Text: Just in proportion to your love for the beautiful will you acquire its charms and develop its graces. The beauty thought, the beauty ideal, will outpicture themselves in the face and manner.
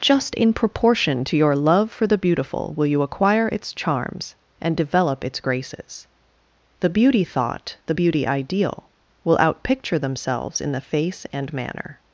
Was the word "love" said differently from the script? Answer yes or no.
no